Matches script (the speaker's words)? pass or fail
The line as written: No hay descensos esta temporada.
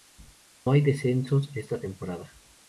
pass